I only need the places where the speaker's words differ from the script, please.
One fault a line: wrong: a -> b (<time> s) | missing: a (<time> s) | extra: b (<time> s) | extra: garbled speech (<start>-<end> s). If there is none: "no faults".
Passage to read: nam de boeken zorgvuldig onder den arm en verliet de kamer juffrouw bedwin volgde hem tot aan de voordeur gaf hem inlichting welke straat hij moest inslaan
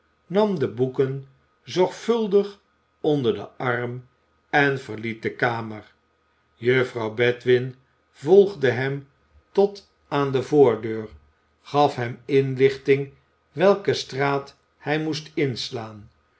no faults